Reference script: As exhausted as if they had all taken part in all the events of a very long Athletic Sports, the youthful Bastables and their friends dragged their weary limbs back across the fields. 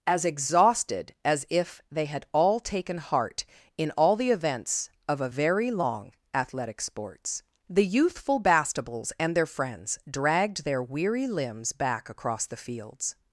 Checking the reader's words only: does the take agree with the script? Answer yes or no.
no